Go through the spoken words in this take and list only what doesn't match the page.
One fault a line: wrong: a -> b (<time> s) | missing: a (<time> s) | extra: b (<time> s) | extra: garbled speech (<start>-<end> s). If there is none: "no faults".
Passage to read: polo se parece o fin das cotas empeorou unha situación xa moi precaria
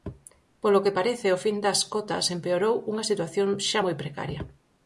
wrong: se -> que (0.8 s)